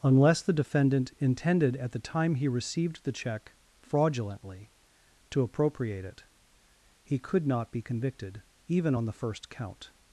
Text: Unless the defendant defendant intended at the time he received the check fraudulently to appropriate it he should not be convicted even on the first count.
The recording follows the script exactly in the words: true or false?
false